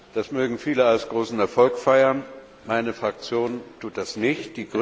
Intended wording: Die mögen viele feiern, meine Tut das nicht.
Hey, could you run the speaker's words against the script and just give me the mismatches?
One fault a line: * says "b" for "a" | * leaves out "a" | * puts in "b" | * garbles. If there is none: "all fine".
* says "Das" for "Die"
* puts in "als großen Erfolg"
* puts in "Fraktion"